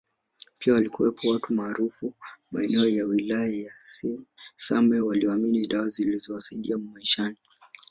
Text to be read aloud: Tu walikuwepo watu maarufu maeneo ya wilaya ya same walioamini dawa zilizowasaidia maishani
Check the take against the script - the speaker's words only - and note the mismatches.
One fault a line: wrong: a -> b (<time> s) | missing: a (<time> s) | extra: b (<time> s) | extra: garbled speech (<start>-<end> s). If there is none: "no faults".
wrong: Tu -> Pia (0.6 s)